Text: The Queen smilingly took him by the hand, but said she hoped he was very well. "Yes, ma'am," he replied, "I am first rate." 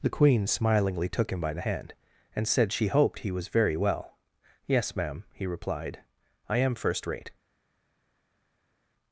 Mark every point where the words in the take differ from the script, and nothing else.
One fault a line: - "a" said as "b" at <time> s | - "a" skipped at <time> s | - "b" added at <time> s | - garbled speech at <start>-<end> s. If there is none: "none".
- "but" said as "and" at 2.4 s